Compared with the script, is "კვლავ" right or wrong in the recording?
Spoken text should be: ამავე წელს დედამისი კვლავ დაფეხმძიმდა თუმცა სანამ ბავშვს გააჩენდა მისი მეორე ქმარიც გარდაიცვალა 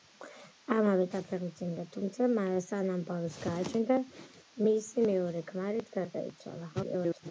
wrong